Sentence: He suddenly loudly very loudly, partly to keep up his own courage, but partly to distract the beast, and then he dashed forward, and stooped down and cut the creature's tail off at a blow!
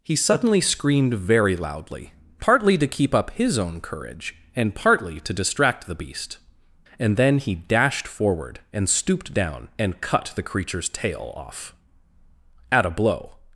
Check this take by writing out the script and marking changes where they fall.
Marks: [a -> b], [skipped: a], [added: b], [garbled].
He suddenly [loudly -> screamed] very loudly, partly to keep up his own courage, [but -> and] partly to distract the beast, and then he dashed forward, and stooped down and cut the creature's tail off at a blow!